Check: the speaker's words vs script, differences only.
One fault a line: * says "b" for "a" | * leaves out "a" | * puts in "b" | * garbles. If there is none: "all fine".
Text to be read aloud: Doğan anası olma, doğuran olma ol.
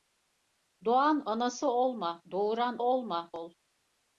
all fine